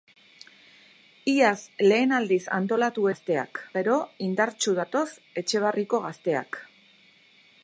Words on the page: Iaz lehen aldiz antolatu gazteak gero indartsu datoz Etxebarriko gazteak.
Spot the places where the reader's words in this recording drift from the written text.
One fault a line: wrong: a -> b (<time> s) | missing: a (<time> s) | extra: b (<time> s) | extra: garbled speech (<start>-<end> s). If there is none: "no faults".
no faults